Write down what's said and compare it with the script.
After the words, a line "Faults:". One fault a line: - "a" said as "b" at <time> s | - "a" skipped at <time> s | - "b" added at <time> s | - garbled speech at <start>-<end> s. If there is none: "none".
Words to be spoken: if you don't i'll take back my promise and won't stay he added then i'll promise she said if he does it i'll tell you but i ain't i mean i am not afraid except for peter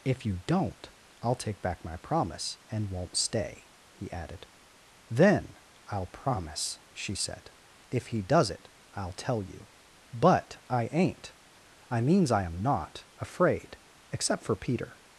if you don't i'll take back my promise and won't stay he added then i'll promise she said if he does it i'll tell you but i ain't i means i am not afraid except for peter
Faults:
- "mean" said as "means" at 12.0 s